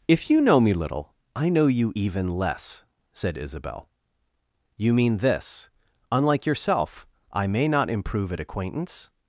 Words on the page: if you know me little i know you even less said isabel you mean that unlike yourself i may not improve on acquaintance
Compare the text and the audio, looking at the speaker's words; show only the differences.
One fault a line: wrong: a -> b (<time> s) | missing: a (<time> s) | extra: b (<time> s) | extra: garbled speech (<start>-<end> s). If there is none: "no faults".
wrong: that -> this (5.2 s)
wrong: on -> at (8.3 s)